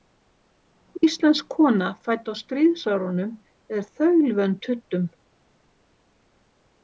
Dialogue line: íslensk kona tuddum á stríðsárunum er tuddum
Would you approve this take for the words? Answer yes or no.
no